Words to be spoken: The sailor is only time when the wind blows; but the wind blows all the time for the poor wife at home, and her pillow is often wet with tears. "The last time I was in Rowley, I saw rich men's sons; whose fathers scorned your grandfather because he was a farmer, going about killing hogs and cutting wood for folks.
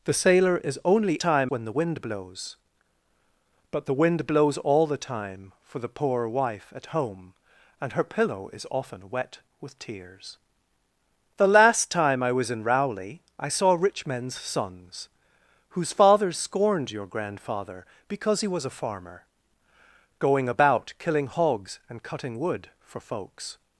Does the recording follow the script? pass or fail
pass